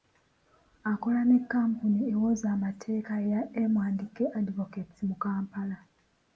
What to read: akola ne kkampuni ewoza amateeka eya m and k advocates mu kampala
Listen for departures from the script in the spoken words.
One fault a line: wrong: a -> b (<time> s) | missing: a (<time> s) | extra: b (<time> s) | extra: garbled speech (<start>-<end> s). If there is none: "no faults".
no faults